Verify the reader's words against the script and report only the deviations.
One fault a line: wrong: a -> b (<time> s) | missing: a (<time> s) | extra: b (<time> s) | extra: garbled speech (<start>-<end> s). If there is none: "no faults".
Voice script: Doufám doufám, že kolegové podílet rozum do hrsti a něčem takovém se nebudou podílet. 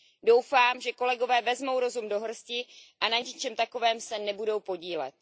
missing: doufám (0.8 s)
wrong: podílet -> vezmou (1.4 s)
extra: na (3.1 s)